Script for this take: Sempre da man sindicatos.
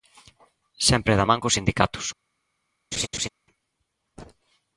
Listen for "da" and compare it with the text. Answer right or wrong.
right